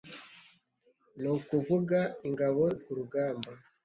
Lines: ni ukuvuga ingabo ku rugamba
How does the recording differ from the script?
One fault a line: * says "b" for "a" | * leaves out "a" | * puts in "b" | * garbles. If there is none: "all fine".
all fine